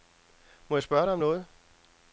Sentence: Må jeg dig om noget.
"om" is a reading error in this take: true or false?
false